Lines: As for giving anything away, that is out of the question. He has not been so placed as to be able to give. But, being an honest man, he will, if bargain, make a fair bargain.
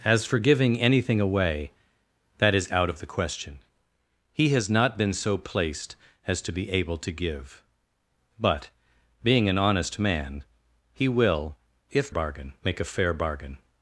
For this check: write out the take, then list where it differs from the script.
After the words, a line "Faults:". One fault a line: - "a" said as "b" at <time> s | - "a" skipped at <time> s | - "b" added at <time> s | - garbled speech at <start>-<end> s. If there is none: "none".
As for giving anything away, that is out of the question. He has not been so placed as to be able to give. But, being an honest man, he will, if bargain, make a fair bargain.
Faults:
none